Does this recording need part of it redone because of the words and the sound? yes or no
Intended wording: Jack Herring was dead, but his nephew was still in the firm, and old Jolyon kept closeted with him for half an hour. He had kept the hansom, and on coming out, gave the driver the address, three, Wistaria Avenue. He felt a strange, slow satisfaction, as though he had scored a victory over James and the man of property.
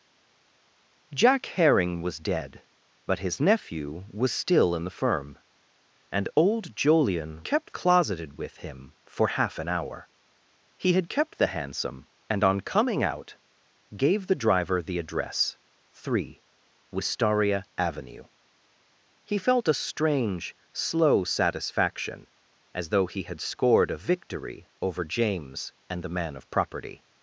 no